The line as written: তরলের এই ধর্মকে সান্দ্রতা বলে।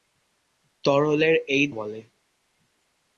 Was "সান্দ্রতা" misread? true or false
true